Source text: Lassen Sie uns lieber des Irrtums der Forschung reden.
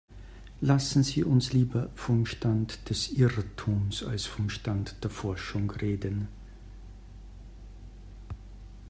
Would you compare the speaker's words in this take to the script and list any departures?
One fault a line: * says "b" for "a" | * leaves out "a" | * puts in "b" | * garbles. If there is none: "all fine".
* puts in "vom Stand"
* puts in "als vom Stand"